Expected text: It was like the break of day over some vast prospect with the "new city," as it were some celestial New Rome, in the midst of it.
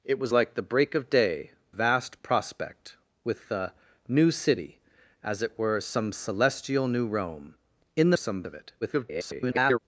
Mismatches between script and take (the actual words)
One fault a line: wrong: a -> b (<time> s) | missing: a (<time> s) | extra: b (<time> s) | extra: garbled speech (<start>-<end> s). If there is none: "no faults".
missing: over some (1.5 s)
wrong: midst -> some (8.1 s)
extra: garbled speech (8.8-9.8 s)